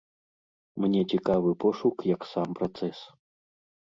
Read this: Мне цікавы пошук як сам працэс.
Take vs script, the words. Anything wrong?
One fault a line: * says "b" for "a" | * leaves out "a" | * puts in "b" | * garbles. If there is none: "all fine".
all fine